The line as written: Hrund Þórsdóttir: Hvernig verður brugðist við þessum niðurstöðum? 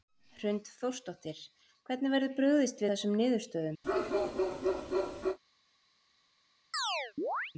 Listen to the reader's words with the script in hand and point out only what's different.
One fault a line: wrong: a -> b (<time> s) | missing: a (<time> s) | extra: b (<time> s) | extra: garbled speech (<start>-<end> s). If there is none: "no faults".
missing: við (2.8 s)